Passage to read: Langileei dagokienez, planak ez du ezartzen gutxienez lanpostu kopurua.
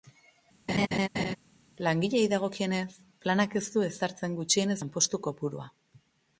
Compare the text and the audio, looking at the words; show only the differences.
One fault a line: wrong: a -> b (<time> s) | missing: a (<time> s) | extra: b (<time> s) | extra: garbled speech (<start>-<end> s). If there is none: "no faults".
no faults